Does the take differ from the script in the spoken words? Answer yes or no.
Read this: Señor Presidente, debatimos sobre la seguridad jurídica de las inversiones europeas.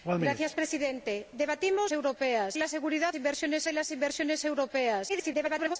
yes